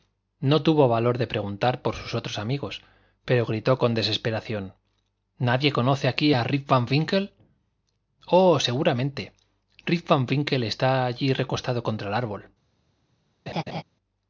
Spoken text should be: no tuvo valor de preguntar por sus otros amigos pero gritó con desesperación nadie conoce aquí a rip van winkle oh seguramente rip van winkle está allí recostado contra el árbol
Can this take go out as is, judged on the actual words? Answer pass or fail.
pass